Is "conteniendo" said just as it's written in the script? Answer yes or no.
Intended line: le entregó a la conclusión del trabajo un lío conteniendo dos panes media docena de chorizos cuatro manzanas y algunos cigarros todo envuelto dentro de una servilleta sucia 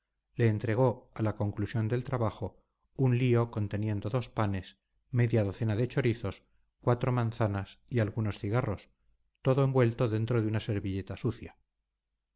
yes